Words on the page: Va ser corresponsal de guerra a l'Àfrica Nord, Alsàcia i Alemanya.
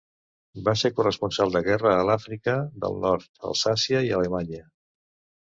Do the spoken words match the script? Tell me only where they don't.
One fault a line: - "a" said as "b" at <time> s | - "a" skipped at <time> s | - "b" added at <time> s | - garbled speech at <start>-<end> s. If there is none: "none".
- "del" added at 2.9 s